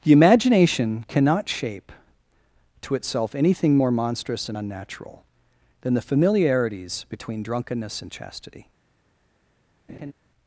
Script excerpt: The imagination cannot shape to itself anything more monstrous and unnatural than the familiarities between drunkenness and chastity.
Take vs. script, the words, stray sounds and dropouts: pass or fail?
fail